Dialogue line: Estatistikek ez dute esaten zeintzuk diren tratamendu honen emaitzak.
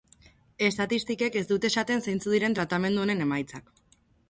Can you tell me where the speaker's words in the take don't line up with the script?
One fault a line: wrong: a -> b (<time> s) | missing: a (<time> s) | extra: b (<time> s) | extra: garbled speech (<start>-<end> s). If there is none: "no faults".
no faults